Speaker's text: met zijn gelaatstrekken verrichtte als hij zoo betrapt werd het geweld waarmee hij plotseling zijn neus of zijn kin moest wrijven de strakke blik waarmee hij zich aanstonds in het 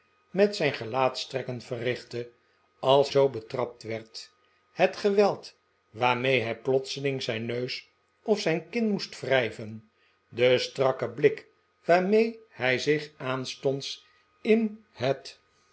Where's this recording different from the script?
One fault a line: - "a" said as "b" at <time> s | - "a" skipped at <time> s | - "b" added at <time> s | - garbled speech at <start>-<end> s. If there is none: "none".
- "hij" skipped at 3.1 s